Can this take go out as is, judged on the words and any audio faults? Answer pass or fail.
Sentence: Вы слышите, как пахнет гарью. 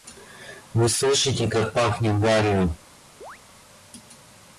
fail